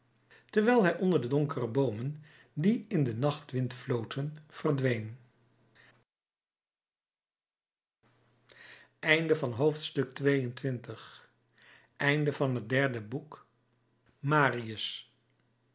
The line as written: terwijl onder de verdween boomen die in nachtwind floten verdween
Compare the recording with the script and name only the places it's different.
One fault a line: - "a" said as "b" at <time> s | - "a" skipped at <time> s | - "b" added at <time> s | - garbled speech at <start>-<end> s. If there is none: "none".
- "hij" added at 0.8 s
- "verdween" said as "donkere" at 1.3 s
- "den" added at 3.0 s